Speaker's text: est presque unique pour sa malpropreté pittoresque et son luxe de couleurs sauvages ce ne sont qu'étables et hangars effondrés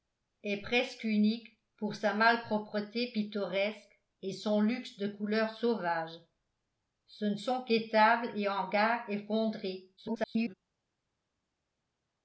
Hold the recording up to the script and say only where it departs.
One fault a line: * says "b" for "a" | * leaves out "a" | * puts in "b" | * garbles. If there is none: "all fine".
* garbles